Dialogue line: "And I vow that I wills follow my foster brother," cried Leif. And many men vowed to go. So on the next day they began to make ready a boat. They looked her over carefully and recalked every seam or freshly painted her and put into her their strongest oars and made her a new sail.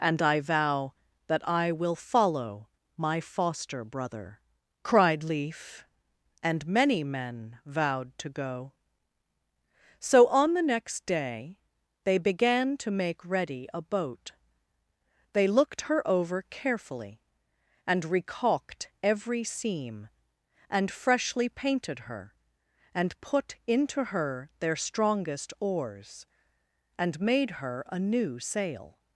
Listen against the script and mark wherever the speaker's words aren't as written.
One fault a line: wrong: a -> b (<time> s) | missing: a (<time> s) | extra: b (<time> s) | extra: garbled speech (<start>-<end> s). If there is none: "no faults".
wrong: wills -> will (1.7 s)
wrong: or -> and (20.7 s)